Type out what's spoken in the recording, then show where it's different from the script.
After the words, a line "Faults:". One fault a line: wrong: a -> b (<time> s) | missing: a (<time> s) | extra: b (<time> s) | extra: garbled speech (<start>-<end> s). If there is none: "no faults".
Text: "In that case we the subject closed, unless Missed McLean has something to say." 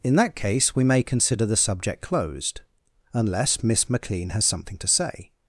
"In that case we may consider the subject closed, unless Miss McLean has something to say."
Faults:
extra: may consider (0.8 s)
wrong: Missed -> Miss (3.6 s)